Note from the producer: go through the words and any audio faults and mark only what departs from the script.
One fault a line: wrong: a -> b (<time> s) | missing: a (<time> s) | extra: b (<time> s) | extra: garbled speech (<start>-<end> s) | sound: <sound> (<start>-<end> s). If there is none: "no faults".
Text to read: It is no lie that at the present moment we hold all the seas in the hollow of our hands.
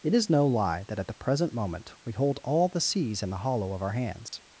sound: dropout (4.3-4.3 s)